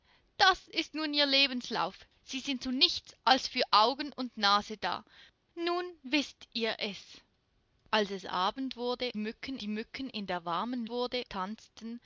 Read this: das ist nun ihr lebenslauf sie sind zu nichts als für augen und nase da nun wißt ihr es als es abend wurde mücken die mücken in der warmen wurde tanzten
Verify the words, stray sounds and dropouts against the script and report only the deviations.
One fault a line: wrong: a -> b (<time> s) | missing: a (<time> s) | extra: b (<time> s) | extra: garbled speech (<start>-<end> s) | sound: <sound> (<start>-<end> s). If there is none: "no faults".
no faults